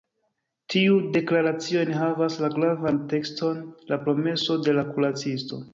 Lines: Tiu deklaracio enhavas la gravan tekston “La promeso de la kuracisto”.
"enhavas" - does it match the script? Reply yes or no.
yes